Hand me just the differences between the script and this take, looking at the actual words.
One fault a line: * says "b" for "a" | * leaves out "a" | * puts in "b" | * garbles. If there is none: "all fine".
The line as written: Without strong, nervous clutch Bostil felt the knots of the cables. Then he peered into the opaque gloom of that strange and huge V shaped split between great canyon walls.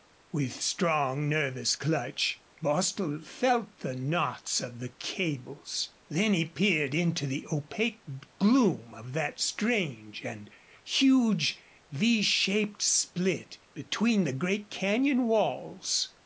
* says "With" for "Without"
* puts in "the"